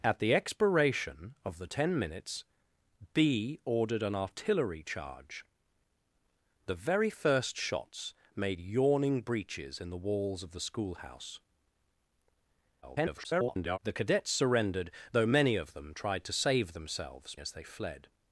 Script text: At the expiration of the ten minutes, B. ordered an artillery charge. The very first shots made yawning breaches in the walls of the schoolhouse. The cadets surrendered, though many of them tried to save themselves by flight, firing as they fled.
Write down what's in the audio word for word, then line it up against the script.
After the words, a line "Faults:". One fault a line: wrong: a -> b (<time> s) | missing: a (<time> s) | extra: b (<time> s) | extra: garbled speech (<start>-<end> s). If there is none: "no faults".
At the expiration of the ten minutes, B. ordered an artillery charge. The very first shots made yawning breaches in the walls of the schoolhouse. [garbled] The cadets surrendered, though many of them tried to save themselves as they fled.
Faults:
extra: garbled speech (12.8-13.8 s)
missing: by flight firing (17.3 s)